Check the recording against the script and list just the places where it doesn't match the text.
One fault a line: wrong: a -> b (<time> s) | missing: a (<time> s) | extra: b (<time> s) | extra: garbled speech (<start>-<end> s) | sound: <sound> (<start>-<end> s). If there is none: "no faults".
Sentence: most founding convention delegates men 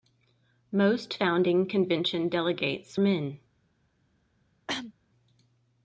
sound: cough (4.7-4.9 s)